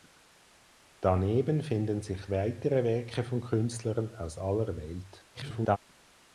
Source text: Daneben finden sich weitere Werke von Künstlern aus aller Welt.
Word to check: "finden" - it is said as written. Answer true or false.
true